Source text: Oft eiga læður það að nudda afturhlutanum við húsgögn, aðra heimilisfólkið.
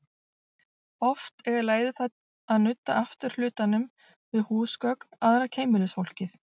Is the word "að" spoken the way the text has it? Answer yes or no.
yes